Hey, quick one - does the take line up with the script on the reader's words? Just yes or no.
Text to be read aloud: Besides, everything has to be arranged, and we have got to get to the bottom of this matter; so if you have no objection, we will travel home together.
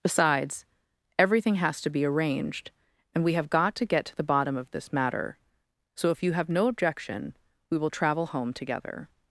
yes